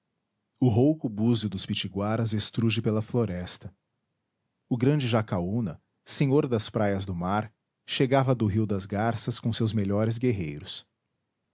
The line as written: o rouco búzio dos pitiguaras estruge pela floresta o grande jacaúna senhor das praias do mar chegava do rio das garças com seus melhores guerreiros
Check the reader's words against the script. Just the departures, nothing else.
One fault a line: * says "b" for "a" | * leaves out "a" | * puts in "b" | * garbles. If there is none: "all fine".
all fine